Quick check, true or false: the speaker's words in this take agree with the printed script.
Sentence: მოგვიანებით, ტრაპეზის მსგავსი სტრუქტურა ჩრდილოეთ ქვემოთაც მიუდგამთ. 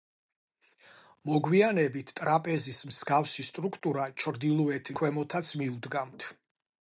true